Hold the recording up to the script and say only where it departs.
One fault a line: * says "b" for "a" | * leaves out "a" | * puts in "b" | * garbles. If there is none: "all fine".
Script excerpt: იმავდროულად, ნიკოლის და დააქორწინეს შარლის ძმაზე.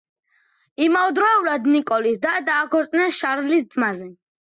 all fine